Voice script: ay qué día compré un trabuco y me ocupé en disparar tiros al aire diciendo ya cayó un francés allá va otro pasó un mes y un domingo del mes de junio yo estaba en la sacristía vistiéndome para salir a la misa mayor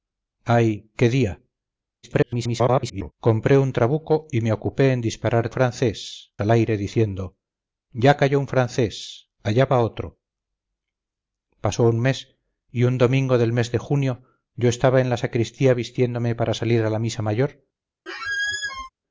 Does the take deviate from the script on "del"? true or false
false